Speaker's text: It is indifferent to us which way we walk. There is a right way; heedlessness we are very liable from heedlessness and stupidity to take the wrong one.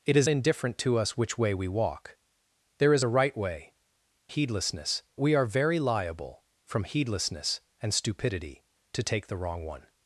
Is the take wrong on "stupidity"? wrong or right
right